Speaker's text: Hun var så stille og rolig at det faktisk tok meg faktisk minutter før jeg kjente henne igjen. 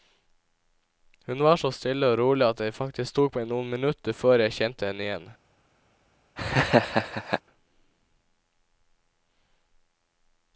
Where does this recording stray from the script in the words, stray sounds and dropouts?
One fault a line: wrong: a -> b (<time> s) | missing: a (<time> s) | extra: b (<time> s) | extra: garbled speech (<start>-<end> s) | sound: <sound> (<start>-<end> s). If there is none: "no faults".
wrong: faktisk -> noen (3.5 s)
sound: laugh (6.4-7.4 s)